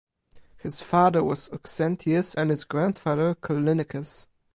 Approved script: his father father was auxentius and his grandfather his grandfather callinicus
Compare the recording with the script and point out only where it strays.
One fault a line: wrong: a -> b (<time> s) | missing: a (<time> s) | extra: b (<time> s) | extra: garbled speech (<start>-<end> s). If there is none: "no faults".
missing: father (1.2 s)
missing: his grandfather (3.3 s)